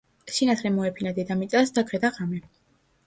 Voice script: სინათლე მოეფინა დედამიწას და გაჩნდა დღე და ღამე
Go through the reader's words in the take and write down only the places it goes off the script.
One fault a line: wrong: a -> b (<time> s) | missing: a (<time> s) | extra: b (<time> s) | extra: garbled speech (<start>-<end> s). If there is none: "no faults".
missing: გაჩნდა (1.9 s)